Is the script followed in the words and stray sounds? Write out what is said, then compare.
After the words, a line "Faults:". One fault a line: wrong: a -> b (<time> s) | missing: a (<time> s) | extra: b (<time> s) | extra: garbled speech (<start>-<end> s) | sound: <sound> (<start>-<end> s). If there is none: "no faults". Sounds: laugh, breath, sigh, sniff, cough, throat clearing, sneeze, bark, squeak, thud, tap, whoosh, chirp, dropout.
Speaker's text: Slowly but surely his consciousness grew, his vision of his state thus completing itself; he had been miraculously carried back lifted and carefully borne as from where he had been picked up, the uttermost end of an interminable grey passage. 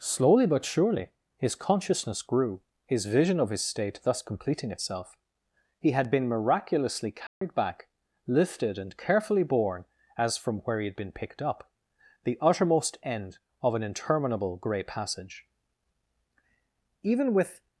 Slowly but surely his consciousness grew, his vision of his state thus completing itself; he had been miraculously carried back lifted and carefully borne as from where he had been picked up, the uttermost end of an interminable grey passage. Even with
Faults:
sound: dropout (7.3-7.4 s)
extra: Even with (17.0 s)